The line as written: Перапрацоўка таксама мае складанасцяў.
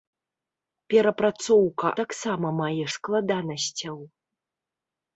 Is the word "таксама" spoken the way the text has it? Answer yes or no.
yes